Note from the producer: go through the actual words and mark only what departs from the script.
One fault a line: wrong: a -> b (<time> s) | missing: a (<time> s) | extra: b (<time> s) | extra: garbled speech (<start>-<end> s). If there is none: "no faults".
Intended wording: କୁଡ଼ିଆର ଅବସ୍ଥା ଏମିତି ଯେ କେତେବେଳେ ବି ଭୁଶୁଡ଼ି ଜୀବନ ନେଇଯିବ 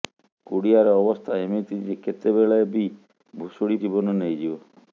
no faults